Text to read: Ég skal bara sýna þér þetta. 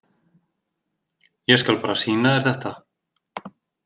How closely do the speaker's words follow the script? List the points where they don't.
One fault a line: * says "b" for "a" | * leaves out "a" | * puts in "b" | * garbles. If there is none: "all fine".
all fine